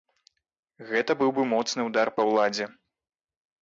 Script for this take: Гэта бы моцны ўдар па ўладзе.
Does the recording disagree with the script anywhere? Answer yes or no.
yes